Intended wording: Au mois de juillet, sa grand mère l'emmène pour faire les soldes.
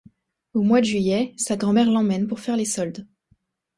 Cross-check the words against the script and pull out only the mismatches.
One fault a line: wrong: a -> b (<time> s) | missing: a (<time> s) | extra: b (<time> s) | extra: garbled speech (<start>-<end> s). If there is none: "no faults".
no faults